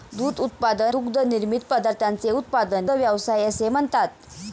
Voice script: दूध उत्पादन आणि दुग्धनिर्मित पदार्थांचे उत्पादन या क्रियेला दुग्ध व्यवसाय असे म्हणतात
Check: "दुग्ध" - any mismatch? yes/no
yes